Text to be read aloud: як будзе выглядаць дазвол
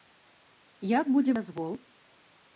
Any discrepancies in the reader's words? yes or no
yes